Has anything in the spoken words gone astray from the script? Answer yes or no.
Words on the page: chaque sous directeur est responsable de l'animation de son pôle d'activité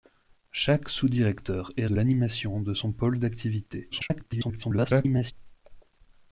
yes